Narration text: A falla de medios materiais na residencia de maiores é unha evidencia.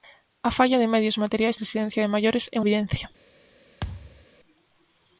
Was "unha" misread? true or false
true